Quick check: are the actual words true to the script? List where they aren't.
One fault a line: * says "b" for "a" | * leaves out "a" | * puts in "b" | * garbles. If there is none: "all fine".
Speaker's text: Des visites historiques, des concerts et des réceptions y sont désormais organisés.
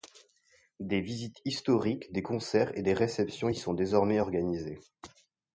all fine